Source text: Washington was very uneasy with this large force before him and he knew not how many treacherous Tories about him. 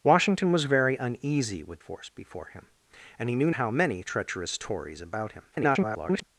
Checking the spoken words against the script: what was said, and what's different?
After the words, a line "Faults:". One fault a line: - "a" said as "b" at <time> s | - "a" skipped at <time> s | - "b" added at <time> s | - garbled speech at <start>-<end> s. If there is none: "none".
Washington was very uneasy with force before him and he knew how many treacherous Tories about him. [garbled]
Faults:
- "this large" skipped at 1.8 s
- "not" skipped at 3.5 s
- garbled speech at 5.5-6.2 s